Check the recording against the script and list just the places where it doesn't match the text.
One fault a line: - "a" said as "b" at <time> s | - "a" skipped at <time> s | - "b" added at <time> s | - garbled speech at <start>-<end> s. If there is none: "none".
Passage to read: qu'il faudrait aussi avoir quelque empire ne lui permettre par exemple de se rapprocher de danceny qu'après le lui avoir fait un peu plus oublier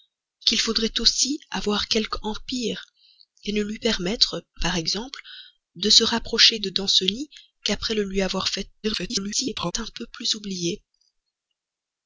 - garbled speech at 8.8-9.7 s